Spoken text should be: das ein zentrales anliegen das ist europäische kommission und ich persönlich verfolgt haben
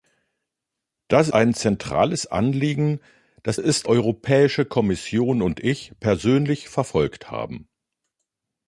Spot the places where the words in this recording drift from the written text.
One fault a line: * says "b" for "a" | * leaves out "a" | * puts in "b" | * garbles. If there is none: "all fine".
all fine